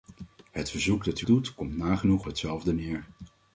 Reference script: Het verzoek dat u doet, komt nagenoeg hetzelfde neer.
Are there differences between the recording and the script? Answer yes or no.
no